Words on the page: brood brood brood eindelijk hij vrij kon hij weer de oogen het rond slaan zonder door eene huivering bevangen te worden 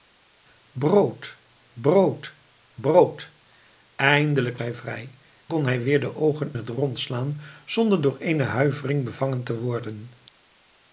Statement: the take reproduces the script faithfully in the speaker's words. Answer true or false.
true